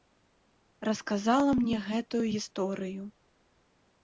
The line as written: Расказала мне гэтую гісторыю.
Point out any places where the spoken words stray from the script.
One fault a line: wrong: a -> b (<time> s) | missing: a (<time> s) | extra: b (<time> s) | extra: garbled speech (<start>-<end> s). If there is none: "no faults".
no faults